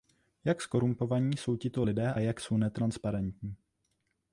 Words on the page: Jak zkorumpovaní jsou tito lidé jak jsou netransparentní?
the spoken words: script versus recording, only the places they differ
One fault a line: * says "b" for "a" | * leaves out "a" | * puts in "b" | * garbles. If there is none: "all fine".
all fine